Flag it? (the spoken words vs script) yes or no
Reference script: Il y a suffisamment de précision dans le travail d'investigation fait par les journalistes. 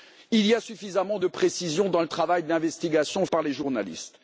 yes